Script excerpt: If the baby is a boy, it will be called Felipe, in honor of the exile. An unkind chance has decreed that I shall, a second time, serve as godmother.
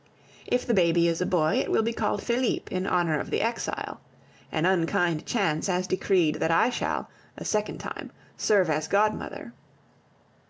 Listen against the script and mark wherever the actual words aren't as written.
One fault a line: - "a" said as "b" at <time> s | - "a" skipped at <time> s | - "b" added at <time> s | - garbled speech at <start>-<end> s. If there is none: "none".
none